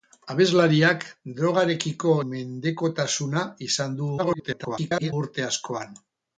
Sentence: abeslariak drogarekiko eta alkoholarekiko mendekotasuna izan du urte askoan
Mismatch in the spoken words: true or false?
true